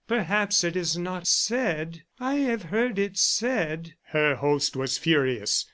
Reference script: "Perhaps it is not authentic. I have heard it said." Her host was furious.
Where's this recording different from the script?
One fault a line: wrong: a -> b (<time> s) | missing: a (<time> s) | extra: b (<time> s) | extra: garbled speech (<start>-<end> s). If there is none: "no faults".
wrong: authentic -> said (1.3 s)